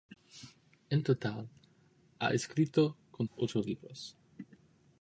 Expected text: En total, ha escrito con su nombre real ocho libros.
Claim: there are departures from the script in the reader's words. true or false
true